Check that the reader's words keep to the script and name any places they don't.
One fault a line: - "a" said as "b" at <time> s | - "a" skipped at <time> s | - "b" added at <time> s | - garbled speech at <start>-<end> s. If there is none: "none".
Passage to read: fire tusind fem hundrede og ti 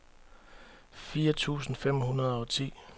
none